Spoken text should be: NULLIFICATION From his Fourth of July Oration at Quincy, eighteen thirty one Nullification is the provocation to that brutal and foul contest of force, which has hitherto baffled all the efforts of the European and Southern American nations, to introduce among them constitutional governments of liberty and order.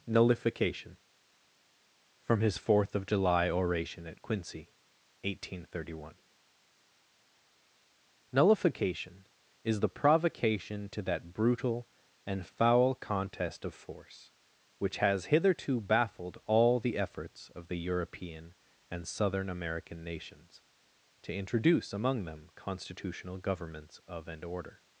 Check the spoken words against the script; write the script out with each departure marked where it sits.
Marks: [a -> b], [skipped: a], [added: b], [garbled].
NULLIFICATION From his Fourth of July Oration at Quincy, eighteen thirty one Nullification is the provocation to that brutal and foul contest of force, which has hitherto baffled all the efforts of the European and Southern American nations, to introduce among them constitutional governments of [skipped: liberty] and order.